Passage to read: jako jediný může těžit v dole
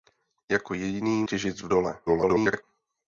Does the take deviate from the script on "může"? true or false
true